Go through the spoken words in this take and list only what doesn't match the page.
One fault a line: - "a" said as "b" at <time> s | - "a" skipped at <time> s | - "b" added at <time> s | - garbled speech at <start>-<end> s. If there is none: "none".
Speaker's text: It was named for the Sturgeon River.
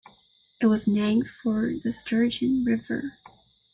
none